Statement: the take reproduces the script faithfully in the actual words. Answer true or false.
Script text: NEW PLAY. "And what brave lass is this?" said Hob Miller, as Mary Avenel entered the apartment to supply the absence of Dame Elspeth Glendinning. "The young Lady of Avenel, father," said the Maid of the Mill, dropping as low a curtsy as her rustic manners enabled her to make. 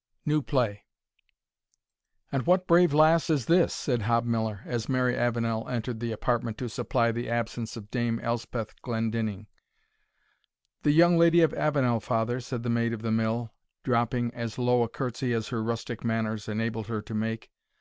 true